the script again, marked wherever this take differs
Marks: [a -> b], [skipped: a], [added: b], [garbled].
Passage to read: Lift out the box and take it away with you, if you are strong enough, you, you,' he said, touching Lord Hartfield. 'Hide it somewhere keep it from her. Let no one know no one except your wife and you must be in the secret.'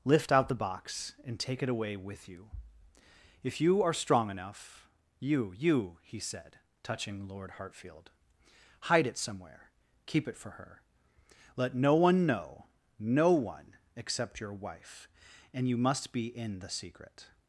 Lift out the box and take it away with you, if you are strong enough, you, you,' he said, touching Lord Hartfield. 'Hide it somewhere keep it [from -> for] her. Let no one know no one except your wife and you must be in the secret.'